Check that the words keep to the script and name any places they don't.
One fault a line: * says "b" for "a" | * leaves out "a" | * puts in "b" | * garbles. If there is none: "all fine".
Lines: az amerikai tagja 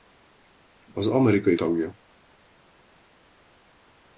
all fine